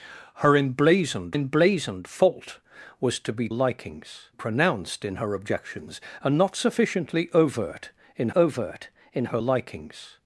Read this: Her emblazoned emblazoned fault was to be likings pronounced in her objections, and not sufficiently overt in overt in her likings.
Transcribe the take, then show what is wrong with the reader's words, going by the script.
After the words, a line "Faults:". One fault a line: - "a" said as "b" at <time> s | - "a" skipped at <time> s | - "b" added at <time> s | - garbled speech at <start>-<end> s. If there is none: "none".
Her emblazoned emblazoned fault was to be likings pronounced in her objections, and not sufficiently overt in overt in her likings.
Faults:
none